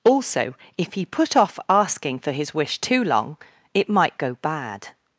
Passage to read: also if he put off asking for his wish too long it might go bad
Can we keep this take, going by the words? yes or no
yes